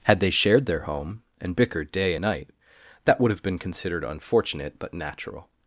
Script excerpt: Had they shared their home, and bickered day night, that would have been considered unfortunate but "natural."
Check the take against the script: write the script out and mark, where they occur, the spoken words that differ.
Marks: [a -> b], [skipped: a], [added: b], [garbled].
Had they shared their home, and bickered day night, that would have been considered unfortunate but "natural."